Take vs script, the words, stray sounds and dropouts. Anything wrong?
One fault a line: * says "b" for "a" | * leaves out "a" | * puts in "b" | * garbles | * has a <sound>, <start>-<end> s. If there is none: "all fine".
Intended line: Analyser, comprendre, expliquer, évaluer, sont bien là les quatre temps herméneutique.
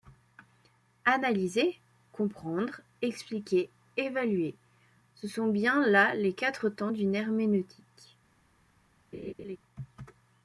* puts in "ce"
* puts in "d'une"
* has a laugh, 9.1-9.6 s